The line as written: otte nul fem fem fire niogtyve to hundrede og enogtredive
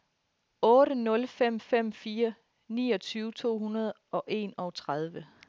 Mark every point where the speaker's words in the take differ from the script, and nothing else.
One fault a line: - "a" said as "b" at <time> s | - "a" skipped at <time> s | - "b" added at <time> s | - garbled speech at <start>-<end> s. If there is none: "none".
none